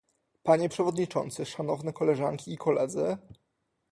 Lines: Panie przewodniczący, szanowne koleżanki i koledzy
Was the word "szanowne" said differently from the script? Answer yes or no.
no